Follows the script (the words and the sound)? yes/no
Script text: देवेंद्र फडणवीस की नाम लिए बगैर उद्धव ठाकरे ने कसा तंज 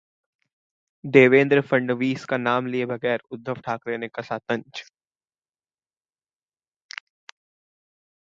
no